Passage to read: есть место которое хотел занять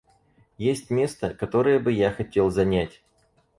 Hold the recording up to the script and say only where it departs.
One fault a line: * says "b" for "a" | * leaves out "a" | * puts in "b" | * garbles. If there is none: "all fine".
* puts in "бы я"